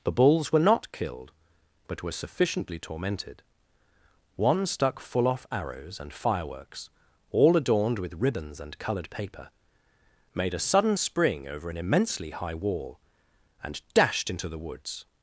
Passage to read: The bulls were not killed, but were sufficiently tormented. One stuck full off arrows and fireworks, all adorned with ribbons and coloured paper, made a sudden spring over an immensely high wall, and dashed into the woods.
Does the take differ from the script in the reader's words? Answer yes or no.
no